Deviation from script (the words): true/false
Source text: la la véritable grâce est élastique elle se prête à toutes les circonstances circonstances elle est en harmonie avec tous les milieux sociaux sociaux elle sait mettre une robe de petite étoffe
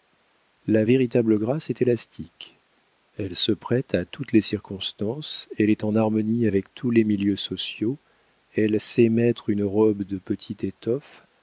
true